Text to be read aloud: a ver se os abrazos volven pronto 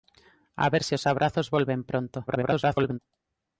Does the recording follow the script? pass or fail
fail